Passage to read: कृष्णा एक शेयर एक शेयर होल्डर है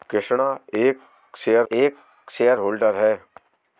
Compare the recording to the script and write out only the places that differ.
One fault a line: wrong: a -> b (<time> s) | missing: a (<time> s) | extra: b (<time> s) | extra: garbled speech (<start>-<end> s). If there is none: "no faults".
no faults